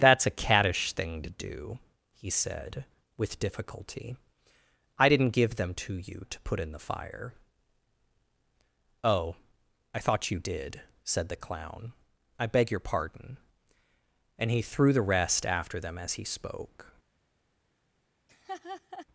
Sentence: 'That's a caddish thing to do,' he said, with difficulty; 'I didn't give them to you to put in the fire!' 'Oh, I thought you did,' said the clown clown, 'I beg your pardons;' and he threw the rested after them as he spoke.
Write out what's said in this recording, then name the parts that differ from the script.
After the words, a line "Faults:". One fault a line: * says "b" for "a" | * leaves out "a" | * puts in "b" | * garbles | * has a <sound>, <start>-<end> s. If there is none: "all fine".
'That's a caddish thing to do,' he said, with difficulty; 'I didn't give them to you to put in the fire!' 'Oh, I thought you did,' said the clown, 'I beg your pardon;' and he threw the rest after them as he spoke.
Faults:
* leaves out "clown"
* says "pardon" for "pardons"
* says "rest" for "rested"
* has a laugh, 18.3-19.1 s